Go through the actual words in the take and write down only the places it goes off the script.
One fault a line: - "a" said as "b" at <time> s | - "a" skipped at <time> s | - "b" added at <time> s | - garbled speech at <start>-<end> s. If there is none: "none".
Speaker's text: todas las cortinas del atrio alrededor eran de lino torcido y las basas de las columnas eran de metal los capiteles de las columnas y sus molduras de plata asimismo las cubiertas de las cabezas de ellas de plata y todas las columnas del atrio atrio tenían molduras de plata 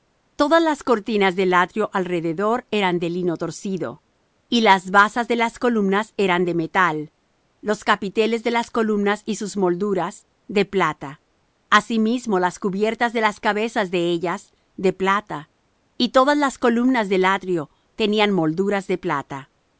- "atrio" skipped at 17.7 s